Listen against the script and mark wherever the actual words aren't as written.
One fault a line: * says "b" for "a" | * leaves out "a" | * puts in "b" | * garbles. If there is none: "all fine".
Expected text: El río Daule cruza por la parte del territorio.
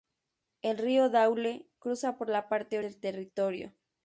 all fine